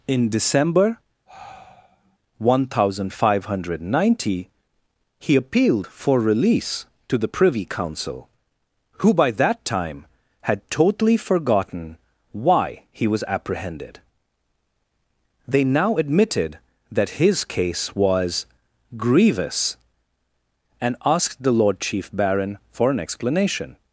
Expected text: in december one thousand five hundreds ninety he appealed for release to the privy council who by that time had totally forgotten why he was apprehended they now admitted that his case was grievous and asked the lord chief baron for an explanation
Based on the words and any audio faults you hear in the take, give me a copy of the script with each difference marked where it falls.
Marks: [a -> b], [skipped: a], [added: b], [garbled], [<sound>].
in december [sigh] one thousand five [hundreds -> hundred] ninety he appealed for release to the privy council who by that time had totally forgotten why he was apprehended they now admitted that his case was grievous and asked the lord chief baron for an explanation